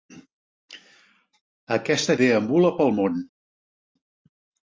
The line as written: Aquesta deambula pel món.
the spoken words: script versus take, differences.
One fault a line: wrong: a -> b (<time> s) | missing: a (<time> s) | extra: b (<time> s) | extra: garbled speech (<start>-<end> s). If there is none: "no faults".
no faults